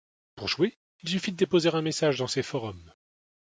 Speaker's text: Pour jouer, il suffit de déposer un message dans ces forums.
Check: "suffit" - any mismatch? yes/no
no